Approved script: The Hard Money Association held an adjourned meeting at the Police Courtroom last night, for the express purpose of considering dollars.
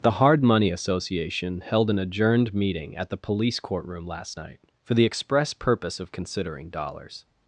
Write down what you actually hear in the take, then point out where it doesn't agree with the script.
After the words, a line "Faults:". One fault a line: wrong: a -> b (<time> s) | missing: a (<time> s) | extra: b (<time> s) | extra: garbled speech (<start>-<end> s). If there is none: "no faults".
The Hard Money Association held an adjourned meeting at the Police Courtroom last night, for the express purpose of considering dollars.
Faults:
no faults